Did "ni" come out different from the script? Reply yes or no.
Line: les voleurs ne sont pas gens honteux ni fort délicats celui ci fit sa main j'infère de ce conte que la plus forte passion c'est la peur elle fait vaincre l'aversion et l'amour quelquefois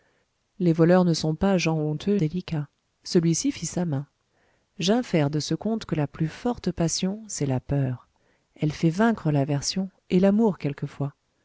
yes